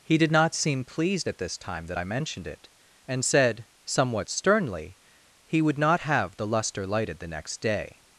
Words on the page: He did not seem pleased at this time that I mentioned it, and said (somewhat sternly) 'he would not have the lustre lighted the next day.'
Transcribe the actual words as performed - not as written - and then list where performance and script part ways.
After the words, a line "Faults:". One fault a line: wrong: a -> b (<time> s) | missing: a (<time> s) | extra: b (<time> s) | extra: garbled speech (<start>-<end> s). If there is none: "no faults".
He did not seem pleased at this time that I mentioned it, and said (somewhat sternly) 'he would not have the lustre lighted the next day.'
Faults:
no faults